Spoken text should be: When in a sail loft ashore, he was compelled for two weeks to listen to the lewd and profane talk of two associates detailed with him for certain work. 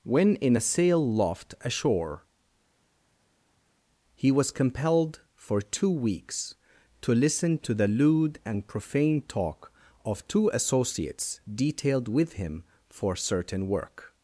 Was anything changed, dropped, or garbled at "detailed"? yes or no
no